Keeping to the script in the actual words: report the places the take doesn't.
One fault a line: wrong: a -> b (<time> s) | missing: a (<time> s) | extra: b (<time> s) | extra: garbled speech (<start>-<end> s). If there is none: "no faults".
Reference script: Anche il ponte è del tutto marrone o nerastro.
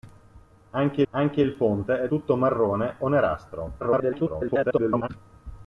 extra: anche (1.1 s)
missing: del (2.1 s)
extra: garbled speech (3.8-5.1 s)